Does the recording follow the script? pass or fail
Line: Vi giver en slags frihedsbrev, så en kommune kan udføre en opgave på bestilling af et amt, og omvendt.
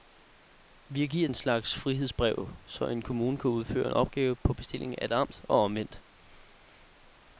pass